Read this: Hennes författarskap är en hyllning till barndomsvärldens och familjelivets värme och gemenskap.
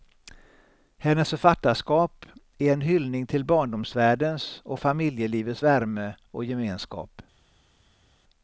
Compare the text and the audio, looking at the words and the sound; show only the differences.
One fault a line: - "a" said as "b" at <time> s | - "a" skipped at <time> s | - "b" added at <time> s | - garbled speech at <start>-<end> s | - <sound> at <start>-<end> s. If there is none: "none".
none